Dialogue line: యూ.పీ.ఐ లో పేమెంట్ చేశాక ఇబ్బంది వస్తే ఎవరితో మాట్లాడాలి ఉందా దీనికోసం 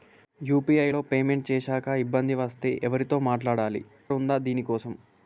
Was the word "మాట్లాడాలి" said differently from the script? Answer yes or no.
no